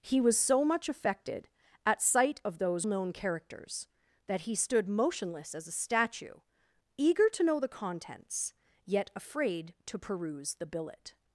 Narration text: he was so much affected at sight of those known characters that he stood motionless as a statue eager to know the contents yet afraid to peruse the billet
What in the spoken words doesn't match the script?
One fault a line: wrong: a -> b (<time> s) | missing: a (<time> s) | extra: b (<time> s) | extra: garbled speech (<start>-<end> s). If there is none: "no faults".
no faults